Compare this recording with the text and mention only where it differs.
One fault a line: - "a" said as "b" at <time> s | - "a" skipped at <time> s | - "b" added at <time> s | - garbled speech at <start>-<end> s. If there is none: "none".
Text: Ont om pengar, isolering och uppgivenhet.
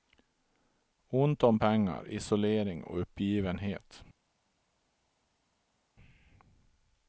none